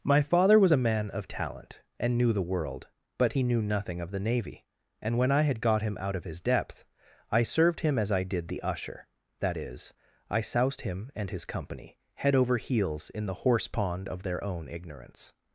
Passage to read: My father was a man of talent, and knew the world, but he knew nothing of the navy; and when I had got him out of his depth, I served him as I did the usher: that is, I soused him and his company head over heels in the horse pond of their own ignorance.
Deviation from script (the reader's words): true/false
false